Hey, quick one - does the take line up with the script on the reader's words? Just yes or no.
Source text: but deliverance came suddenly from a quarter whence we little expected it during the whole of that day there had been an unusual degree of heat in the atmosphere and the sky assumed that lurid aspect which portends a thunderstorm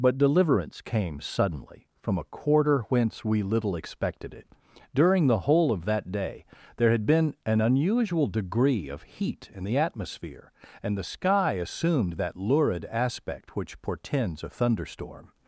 yes